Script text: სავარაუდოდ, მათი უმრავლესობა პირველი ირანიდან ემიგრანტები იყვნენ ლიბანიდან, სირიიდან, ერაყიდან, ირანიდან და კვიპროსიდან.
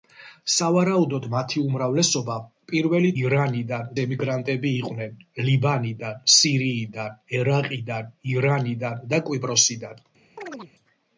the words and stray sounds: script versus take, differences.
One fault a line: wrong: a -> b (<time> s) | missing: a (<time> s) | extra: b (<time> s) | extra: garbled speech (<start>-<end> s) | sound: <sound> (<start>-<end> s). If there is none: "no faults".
sound: chirp (10.4-10.7 s)